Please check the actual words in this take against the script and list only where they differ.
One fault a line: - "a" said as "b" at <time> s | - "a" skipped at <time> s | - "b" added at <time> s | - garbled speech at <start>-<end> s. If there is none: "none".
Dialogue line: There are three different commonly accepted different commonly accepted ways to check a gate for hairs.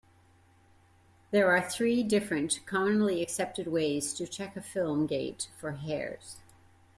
- "different commonly accepted" skipped at 3.7 s
- "film" added at 4.6 s